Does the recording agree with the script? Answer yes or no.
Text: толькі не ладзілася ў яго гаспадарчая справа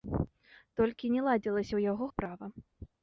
no